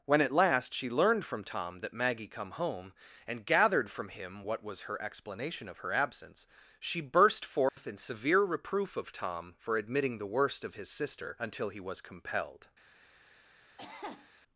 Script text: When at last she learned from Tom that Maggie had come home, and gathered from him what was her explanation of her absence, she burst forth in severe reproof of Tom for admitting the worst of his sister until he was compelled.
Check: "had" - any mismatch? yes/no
yes